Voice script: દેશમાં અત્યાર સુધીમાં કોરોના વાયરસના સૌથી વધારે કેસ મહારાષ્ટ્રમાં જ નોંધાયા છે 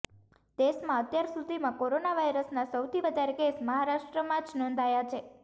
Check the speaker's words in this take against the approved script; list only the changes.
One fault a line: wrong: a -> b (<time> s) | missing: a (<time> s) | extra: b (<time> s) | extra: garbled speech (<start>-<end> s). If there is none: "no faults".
no faults